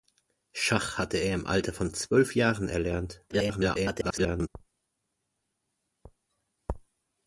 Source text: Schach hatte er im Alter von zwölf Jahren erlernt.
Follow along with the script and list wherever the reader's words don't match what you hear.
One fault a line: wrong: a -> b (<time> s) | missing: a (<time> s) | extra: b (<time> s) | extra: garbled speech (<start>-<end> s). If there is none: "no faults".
extra: garbled speech (3.3-4.5 s)